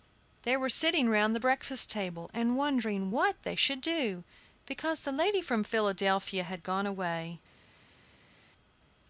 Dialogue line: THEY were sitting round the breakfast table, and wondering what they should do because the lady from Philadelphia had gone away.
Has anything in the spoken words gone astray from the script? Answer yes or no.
no